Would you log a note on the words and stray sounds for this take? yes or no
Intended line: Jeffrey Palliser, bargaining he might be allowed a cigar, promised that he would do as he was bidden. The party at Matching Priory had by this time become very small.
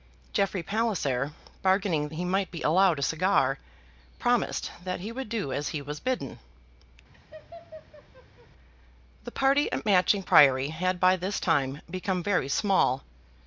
yes